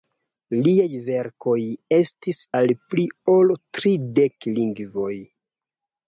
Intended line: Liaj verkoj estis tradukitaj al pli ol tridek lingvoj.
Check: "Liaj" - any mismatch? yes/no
no